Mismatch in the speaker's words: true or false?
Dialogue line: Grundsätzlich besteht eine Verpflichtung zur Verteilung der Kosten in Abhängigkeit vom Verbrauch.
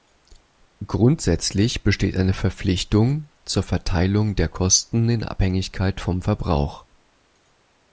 false